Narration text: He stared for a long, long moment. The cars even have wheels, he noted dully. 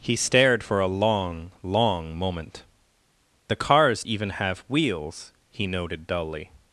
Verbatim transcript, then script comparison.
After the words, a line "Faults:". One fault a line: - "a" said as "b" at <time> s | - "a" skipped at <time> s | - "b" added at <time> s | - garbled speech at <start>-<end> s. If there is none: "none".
He stared for a long, long moment. The cars even have wheels, he noted dully.
Faults:
none